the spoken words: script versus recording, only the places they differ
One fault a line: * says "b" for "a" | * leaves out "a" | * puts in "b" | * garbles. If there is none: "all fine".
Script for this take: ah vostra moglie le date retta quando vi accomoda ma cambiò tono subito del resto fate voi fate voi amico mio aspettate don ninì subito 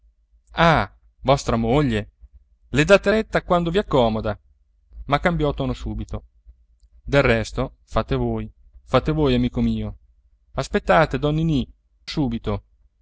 all fine